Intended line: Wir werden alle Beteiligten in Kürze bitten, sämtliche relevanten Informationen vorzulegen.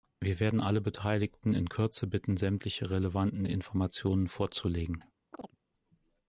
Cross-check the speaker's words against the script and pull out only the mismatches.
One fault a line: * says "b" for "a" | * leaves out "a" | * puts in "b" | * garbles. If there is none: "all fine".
all fine